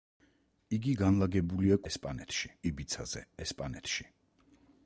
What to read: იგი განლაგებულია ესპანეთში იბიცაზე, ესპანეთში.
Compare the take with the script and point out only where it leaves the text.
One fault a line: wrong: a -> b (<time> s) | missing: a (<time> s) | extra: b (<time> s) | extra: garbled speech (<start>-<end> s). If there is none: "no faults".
no faults